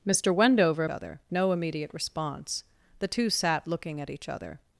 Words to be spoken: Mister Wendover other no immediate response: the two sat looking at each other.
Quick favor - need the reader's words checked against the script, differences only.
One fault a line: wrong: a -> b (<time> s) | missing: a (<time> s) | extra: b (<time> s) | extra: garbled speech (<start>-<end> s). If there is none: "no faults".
no faults